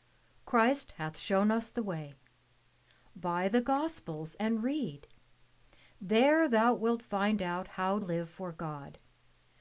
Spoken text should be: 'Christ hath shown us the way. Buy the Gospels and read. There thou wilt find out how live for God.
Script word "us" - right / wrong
right